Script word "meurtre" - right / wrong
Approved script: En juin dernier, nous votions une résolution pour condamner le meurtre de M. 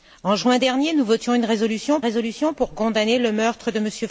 right